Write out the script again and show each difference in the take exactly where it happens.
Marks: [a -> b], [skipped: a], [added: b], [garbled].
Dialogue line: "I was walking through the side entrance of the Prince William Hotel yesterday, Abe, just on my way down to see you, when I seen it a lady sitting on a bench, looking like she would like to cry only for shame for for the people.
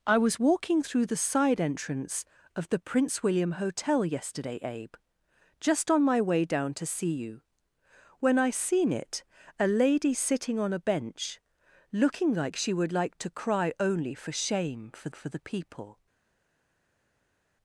"I was walking through the side entrance of the Prince William Hotel yesterday, Abe, just on my way down to see you, when I seen it a lady sitting on a bench, looking like she would like to cry only for shame for for the people.